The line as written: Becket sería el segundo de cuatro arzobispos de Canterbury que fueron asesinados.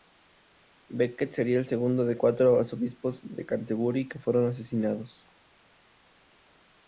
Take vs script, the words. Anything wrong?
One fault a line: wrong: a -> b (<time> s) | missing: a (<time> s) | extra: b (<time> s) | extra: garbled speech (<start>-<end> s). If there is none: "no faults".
no faults